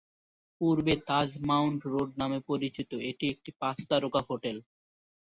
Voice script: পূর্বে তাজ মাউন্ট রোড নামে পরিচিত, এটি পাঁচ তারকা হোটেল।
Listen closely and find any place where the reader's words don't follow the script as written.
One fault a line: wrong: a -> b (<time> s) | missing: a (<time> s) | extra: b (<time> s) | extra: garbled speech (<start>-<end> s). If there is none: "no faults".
extra: একটি (3.3 s)